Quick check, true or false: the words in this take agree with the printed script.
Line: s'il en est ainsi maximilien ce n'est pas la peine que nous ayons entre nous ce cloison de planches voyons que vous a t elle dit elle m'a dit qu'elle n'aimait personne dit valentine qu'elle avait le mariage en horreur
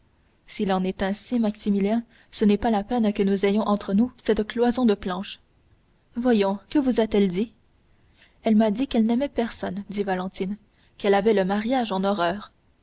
false